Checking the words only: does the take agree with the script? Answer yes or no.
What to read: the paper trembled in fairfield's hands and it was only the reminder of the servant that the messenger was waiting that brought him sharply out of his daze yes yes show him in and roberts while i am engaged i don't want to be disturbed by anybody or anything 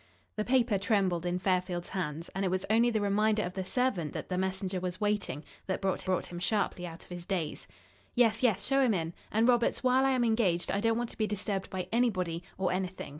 no